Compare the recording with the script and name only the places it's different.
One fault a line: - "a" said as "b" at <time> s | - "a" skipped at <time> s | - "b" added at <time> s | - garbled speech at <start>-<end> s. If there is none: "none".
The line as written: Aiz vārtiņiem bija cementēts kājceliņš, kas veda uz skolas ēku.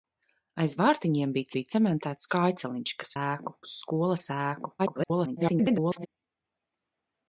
- "bija" added at 1.5 s
- "veda" said as "ēku" at 3.2 s
- garbled speech at 4.8-6.1 s